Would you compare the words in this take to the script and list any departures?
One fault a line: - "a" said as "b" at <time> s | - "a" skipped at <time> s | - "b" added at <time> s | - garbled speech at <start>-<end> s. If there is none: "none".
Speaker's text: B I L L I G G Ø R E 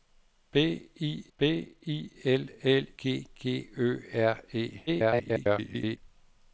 - "b I" added at 1.4 s
- "I" skipped at 2.8 s
- garbled speech at 4.9-6.0 s